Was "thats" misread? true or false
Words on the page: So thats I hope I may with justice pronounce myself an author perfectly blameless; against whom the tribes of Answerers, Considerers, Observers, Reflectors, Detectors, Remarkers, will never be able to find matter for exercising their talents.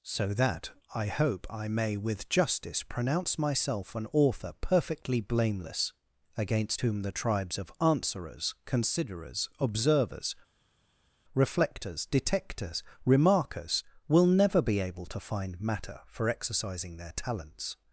true